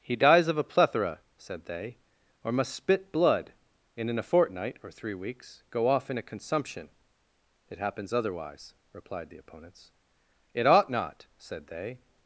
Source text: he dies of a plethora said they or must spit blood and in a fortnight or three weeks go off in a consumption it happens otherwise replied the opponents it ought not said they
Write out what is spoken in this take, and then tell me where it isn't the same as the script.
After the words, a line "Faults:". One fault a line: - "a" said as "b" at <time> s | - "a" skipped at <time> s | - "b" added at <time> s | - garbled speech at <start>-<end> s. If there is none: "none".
he dies of a plethora said they or must spit blood and in a fortnight or three weeks go off in a consumption it happens otherwise replied the opponents it ought not said they
Faults:
none